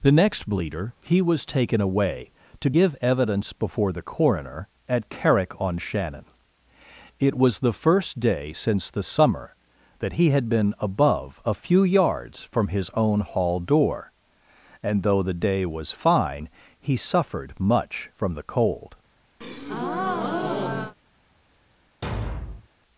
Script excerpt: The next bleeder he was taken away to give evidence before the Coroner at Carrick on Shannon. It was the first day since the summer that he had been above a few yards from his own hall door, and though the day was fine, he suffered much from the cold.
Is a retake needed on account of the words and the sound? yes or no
yes